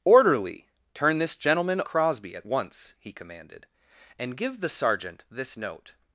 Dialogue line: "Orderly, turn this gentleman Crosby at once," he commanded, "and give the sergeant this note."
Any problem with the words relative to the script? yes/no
no